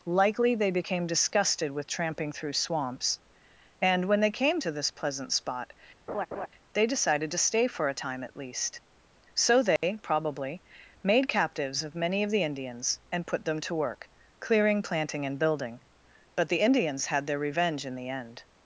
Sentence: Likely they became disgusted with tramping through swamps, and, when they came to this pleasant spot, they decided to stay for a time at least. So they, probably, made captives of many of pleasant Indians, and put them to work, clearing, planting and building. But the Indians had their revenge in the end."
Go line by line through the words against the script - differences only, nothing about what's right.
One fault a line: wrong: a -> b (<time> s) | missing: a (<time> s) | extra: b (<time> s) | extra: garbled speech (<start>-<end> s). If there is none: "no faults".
wrong: pleasant -> the (12.3 s)